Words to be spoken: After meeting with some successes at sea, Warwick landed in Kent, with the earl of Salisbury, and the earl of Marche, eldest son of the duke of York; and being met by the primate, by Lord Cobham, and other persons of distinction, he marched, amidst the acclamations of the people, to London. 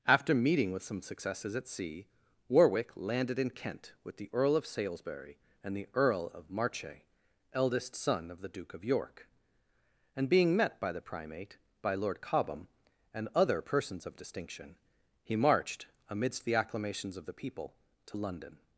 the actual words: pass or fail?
pass